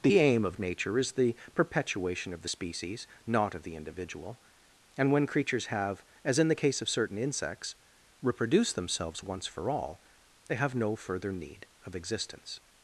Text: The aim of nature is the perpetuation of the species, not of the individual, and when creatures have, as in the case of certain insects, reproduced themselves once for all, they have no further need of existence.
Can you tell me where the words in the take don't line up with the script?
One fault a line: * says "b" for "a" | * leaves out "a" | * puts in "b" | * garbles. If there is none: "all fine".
all fine